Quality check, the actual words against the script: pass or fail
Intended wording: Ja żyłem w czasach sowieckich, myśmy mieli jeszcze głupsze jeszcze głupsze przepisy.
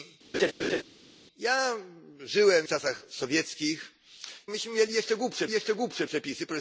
pass